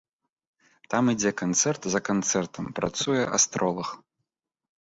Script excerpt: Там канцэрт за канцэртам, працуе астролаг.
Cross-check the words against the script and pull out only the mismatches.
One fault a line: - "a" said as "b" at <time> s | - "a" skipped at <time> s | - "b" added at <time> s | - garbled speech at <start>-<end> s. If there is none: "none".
- "ідзе" added at 1.1 s